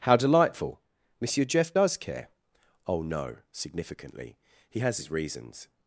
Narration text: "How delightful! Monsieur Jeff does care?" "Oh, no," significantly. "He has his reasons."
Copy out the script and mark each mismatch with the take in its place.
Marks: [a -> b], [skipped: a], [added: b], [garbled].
"How delightful! Monsieur Jeff does care?" "Oh, no," significantly. "He has his reasons."